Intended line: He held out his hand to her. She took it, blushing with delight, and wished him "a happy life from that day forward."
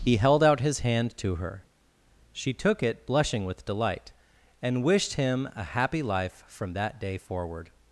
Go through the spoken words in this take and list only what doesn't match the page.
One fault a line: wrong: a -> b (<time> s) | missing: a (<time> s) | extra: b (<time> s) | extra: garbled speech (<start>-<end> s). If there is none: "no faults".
no faults